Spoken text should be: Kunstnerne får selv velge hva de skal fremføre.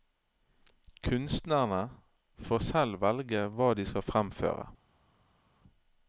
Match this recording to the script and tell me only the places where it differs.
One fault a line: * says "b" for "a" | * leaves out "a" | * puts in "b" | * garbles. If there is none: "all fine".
all fine